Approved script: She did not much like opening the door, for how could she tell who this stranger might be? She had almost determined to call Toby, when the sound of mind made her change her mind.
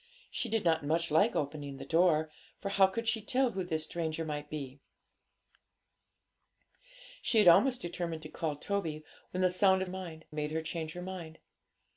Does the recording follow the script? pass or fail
pass